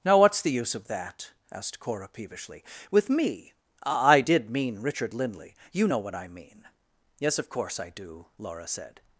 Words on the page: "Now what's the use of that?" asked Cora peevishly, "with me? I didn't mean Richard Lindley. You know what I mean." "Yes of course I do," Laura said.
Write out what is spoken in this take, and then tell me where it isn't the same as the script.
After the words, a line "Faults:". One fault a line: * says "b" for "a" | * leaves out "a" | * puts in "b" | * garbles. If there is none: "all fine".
"Now what's the use of that?" asked Cora peevishly, "with me? I did mean Richard Lindley. You know what I mean." "Yes of course I do," Laura said.
Faults:
* says "did" for "didn't"